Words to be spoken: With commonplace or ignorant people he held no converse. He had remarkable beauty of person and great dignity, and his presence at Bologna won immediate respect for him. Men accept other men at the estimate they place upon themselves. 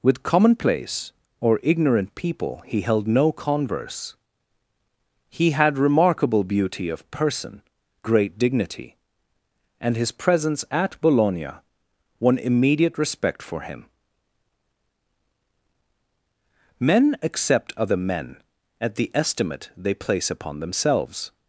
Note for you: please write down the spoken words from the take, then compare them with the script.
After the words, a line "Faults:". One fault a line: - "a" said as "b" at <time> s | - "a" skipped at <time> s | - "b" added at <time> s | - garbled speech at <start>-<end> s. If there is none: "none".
With commonplace or ignorant people he held no converse. He had remarkable beauty of person great dignity, and his presence at Bologna won immediate respect for him. Men accept other men at the estimate they place upon themselves.
Faults:
- "and" skipped at 7.6 s